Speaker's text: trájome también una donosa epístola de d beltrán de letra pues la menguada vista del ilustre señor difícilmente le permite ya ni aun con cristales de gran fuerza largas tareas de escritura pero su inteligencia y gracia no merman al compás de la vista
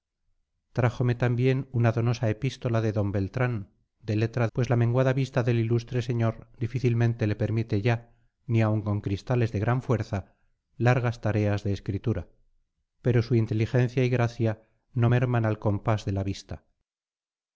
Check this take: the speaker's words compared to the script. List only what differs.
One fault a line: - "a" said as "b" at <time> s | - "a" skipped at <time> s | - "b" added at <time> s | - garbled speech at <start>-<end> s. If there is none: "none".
none